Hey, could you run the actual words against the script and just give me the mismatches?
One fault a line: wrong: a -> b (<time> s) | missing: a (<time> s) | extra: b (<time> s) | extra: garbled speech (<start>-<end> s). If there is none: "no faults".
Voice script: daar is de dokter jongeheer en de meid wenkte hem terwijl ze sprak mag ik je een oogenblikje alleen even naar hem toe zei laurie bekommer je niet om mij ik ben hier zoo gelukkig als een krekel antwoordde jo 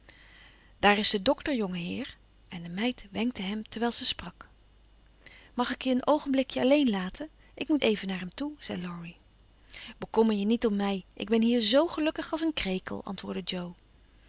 extra: laten ik moet (6.9 s)